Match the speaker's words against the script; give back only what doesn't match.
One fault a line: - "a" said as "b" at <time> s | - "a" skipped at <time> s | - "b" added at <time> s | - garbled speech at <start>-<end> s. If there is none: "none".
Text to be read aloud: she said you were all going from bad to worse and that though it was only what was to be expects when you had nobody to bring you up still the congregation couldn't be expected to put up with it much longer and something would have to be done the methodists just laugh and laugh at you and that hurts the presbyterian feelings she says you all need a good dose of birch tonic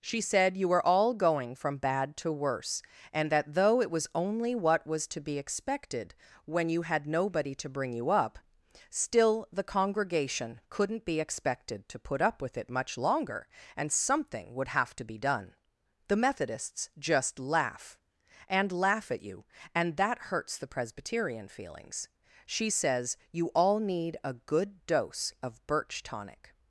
- "expects" said as "expected" at 5.4 s